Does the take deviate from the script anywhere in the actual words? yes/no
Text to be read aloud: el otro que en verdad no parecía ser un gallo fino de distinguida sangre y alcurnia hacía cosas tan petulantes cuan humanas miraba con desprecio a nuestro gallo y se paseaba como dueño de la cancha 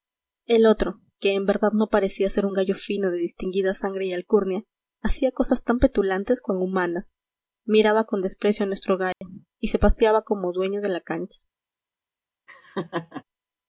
no